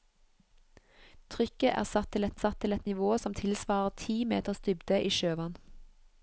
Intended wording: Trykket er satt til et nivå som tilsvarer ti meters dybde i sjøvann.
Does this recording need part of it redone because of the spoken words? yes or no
yes